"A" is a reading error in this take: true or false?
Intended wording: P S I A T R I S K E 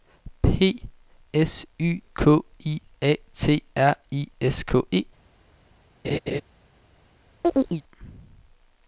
false